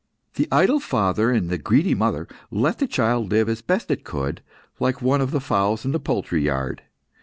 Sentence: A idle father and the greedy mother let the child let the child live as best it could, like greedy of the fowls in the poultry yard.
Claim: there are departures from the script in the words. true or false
true